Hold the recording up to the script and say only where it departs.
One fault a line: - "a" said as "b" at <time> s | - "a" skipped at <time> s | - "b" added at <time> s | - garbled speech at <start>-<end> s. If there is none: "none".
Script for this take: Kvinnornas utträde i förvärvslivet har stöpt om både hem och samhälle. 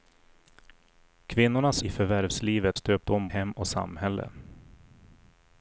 - "utträde" skipped at 1.8 s
- "har" skipped at 2.8 s
- "både" skipped at 3.3 s